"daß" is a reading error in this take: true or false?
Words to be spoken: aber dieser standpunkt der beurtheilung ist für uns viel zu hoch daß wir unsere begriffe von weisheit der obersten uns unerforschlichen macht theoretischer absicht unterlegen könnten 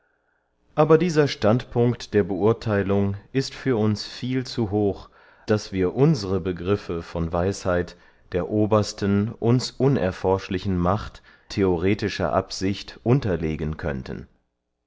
false